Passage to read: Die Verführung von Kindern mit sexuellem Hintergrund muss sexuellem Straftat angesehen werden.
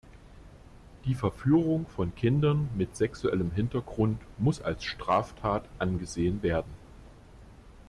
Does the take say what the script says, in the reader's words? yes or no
no